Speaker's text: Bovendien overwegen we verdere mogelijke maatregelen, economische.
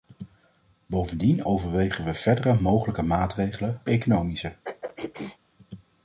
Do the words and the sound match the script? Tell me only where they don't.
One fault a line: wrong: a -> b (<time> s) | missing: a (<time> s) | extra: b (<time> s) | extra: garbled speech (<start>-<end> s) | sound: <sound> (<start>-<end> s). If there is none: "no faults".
sound: throat clearing (4.6-5.4 s)